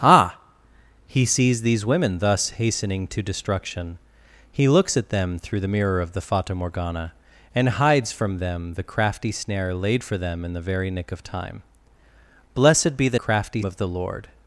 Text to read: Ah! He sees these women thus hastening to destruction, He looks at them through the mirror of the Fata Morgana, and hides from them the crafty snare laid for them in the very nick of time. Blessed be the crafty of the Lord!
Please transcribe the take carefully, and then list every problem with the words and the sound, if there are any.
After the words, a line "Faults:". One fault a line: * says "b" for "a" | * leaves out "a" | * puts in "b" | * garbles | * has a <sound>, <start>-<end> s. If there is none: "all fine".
Ah! He sees these women thus hastening to destruction, He looks at them through the mirror of the Fata Morgana, and hides from them the crafty snare laid for them in the very nick of time. Blessed be the crafty of the Lord!
Faults:
all fine